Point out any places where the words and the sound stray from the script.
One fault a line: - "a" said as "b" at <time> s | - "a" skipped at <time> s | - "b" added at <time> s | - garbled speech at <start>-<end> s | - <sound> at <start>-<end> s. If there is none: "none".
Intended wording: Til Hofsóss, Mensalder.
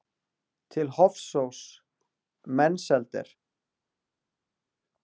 none